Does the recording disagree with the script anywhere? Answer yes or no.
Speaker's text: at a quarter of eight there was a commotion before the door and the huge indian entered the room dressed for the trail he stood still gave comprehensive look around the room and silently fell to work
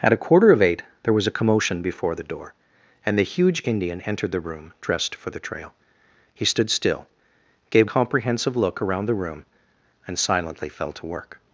no